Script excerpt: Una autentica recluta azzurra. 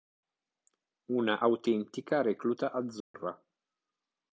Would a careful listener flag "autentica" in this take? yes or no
no